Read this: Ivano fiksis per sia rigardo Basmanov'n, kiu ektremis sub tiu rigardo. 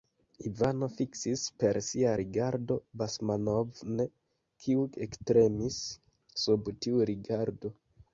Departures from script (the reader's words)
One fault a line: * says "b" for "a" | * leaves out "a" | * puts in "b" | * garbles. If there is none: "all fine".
all fine